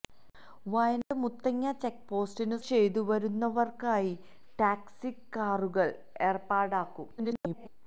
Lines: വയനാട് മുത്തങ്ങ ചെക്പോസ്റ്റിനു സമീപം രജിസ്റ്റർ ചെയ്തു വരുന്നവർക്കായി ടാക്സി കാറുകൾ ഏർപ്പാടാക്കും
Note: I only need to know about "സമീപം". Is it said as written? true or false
false